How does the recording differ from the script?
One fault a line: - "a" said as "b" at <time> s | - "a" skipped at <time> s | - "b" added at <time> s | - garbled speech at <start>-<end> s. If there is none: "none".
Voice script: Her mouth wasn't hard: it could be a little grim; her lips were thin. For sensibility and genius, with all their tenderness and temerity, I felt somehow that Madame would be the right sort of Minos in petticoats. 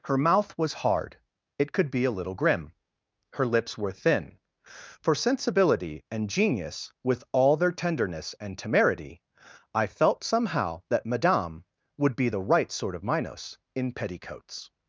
- "wasn't" said as "was" at 0.6 s